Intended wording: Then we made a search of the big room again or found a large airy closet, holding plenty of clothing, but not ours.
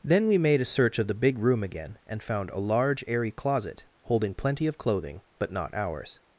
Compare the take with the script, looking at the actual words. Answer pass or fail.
fail